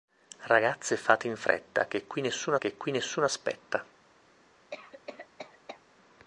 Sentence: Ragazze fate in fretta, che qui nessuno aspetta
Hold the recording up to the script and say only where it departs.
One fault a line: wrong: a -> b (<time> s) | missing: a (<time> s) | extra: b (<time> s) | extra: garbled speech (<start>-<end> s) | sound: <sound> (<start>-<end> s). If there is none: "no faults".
extra: che qui nessuno (2.6 s)
sound: cough (4.7-5.8 s)